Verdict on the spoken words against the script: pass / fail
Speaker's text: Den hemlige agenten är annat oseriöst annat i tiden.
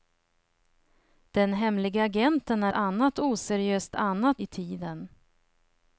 pass